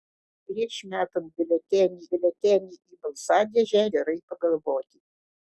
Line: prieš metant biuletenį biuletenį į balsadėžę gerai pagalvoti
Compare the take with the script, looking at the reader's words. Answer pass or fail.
pass